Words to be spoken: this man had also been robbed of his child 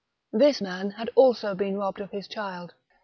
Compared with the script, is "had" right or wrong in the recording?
right